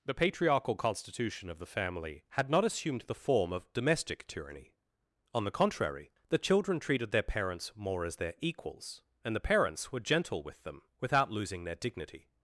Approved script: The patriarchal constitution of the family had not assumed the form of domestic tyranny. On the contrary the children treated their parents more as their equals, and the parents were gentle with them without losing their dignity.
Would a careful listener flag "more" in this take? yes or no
no